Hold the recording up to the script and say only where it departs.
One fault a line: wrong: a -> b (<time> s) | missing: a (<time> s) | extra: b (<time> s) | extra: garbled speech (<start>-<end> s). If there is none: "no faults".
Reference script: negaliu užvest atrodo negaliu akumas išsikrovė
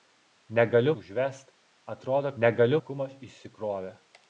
no faults